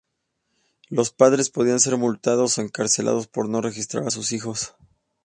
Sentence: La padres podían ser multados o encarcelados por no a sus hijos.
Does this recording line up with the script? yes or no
no